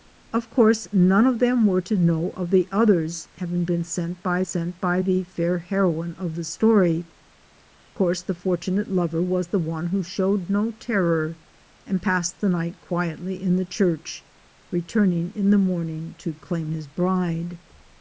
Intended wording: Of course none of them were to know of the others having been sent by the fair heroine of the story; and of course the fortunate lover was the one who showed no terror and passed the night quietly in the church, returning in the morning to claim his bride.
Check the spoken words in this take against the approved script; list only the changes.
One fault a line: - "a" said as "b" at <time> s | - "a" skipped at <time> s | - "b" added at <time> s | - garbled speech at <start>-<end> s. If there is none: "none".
- "sent by" added at 4.4 s
- "and of" skipped at 7.1 s